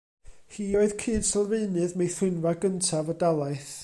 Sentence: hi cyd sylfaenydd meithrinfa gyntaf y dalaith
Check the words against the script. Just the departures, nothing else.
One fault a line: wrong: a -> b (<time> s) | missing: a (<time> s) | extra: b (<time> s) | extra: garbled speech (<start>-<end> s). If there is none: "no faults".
extra: oedd (0.8 s)